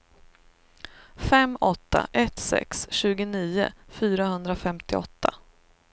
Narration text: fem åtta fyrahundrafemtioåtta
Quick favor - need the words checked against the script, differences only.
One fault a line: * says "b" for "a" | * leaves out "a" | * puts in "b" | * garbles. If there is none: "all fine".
* puts in "ett sex tjugonio"